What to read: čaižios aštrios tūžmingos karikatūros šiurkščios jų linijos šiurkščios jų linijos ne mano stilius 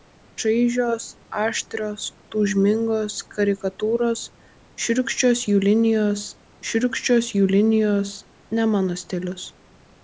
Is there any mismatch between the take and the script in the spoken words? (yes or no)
no